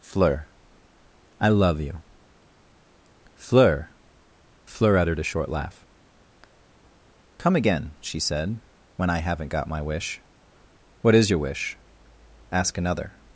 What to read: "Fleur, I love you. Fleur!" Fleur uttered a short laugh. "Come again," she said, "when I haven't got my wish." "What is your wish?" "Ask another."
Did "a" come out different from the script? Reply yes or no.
no